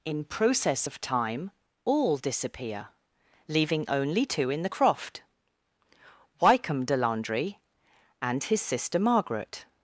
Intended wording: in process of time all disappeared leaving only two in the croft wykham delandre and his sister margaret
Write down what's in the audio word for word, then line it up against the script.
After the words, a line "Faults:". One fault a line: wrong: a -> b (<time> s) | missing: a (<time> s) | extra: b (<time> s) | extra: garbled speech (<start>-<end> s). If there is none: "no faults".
in process of time all disappear leaving only two in the croft wykham delandre and his sister margaret
Faults:
wrong: disappeared -> disappear (2.2 s)